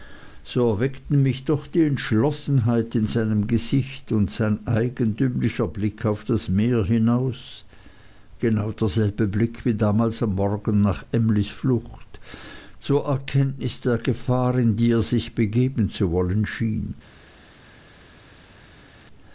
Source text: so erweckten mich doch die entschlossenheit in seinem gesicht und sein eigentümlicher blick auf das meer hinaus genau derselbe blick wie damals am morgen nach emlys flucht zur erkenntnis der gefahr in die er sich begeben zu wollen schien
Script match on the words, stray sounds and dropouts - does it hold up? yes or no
yes